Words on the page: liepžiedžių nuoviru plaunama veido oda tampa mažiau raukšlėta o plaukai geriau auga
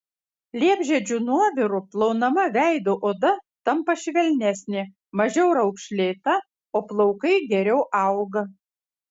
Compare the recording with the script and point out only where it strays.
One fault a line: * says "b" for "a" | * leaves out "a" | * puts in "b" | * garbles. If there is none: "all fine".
* puts in "švelnesnė"